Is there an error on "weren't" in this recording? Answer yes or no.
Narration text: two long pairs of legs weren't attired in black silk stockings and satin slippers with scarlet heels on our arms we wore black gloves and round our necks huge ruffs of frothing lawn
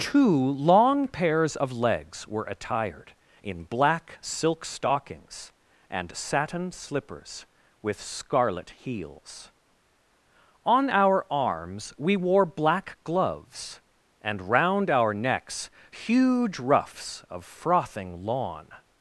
yes